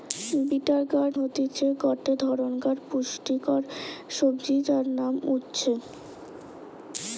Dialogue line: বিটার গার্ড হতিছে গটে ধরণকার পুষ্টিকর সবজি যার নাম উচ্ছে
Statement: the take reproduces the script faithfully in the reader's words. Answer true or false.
true